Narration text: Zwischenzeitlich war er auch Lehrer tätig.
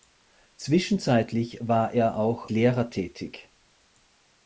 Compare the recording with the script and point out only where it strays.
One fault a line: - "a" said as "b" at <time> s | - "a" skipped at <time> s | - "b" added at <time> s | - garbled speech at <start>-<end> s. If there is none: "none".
none